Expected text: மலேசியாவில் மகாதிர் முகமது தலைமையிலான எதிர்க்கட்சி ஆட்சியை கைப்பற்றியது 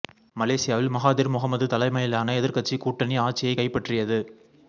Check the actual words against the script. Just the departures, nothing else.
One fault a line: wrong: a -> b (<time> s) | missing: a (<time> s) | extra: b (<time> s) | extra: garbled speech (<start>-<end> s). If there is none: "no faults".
extra: கூட்டணி (2.8 s)